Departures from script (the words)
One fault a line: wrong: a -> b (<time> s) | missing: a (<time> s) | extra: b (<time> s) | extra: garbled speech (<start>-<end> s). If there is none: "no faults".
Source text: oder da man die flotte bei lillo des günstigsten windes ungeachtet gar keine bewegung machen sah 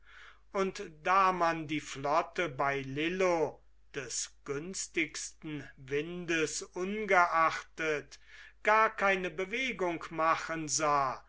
wrong: oder -> und (0.5 s)